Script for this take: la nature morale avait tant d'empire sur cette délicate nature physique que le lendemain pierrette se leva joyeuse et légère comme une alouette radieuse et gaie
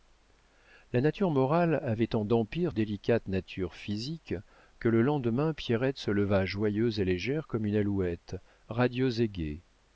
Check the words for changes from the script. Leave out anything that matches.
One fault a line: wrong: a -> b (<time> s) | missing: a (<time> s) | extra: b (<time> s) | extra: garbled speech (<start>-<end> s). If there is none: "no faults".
missing: sur cette (2.7 s)